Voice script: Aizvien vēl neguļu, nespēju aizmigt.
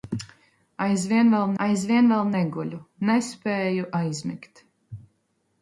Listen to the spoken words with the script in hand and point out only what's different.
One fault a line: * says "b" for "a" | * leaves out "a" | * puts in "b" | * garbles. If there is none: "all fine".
* puts in "aizvien vēl"